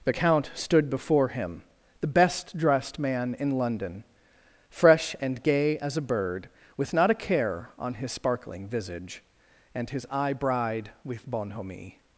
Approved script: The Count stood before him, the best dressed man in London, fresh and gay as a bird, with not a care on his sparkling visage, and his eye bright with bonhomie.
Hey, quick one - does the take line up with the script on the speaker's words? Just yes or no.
no